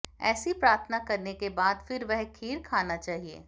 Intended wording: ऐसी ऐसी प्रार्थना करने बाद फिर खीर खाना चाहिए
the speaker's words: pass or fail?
fail